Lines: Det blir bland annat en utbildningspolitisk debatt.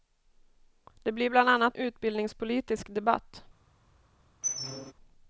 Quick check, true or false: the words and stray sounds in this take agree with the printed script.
false